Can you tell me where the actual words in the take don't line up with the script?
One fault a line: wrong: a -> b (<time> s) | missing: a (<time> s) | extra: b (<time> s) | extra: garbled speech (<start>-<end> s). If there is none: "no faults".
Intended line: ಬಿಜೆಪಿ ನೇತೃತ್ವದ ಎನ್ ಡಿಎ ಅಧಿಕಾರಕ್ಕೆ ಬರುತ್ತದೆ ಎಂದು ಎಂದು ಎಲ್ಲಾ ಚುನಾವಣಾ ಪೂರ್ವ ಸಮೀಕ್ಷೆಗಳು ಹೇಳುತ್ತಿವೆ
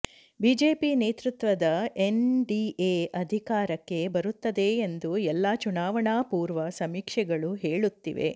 missing: ಎಂದು (5.2 s)